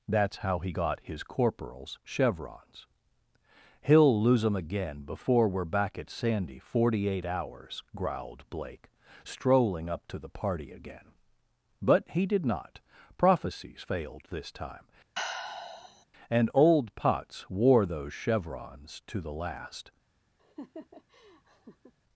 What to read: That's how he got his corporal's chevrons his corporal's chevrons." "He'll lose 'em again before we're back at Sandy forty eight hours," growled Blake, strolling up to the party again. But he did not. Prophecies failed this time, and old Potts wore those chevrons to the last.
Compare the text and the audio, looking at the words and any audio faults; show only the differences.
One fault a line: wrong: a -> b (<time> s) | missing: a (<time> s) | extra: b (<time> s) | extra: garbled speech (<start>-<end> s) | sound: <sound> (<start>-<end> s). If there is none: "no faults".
missing: his corporal's chevrons (2.9 s)
sound: sigh (15.2-16.1 s)
sound: laugh (20.4-21.9 s)